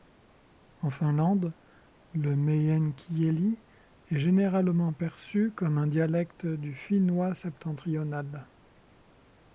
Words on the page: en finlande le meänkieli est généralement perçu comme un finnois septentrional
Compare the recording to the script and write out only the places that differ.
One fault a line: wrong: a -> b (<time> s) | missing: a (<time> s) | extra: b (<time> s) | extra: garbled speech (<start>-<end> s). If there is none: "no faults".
extra: dialecte du (5.8 s)